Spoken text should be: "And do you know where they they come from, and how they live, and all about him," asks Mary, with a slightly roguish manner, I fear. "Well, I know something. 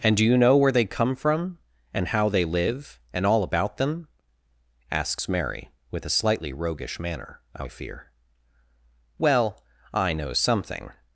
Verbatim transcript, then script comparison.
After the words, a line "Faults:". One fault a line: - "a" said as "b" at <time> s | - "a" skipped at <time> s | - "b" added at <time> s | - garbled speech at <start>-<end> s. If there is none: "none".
"And do you know where they come from, and how they live, and all about them," asks Mary, with a slightly roguish manner, I fear. "Well, I know something.
Faults:
- "they" skipped at 0.8 s
- "him" said as "them" at 3.8 s